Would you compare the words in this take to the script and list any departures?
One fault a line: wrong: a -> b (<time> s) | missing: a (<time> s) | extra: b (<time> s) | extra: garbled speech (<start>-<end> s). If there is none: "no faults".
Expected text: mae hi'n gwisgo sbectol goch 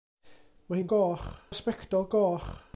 wrong: gwisgo -> goch (0.9 s)